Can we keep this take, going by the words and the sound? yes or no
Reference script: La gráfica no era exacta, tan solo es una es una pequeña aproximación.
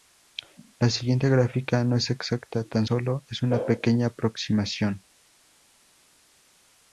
no